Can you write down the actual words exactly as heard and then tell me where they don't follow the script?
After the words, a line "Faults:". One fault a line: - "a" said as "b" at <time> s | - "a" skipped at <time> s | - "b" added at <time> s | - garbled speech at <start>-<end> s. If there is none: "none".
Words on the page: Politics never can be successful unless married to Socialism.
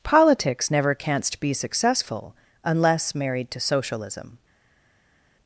Politics never canst be successful unless married to Socialism.
Faults:
- "can" said as "canst" at 0.9 s